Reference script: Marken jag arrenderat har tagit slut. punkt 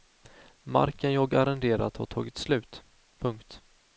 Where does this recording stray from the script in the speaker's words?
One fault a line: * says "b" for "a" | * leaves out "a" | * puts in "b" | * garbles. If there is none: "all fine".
all fine